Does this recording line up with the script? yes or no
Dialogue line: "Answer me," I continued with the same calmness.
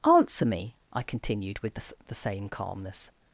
no